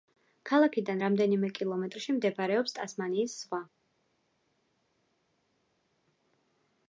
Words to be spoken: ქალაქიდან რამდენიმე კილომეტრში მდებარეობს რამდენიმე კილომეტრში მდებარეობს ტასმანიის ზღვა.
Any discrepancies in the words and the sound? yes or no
yes